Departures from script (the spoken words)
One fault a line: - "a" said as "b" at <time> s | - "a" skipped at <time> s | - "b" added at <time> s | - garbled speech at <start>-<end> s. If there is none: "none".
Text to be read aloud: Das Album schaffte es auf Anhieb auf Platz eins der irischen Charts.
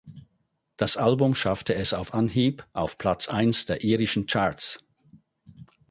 none